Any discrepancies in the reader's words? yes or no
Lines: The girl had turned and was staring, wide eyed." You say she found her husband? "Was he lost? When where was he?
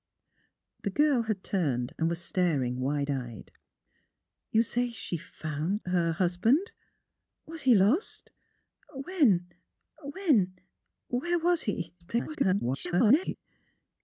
yes